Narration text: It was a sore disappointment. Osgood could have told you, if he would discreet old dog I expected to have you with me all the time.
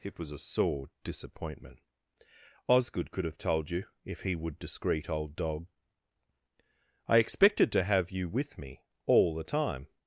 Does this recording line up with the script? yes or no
yes